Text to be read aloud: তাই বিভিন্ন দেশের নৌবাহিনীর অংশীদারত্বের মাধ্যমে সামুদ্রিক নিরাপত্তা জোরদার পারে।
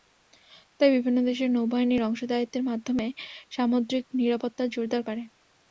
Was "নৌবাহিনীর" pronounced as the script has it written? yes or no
yes